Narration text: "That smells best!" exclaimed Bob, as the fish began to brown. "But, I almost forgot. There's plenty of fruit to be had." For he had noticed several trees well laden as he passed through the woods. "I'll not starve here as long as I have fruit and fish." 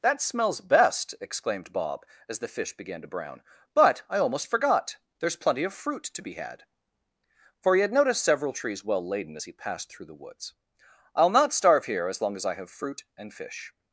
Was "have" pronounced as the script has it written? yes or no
yes